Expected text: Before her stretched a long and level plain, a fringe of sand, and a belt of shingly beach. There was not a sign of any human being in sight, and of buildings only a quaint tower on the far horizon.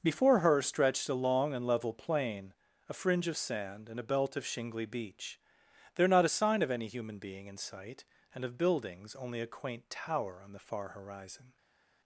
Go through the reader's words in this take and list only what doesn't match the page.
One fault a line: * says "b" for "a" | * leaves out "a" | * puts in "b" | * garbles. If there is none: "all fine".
* leaves out "was"